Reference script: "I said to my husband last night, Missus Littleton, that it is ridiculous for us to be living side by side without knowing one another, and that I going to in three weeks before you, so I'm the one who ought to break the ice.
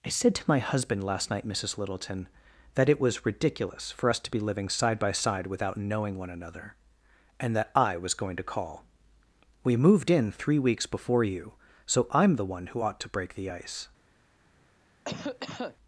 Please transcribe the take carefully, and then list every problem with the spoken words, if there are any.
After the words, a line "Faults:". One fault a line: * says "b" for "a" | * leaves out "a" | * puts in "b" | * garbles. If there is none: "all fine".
"I said to my husband last night, Missus Littleton, that it was ridiculous for us to be living side by side without knowing one another, and that I was going to call. We moved in three weeks before you, so I'm the one who ought to break the ice.
Faults:
* says "was" for "is"
* puts in "was"
* puts in "call We moved"